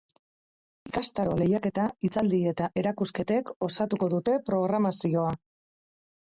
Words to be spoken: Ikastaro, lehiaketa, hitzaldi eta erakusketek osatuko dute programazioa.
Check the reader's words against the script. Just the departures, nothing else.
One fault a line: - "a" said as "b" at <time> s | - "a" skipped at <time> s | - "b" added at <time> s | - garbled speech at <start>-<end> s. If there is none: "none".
none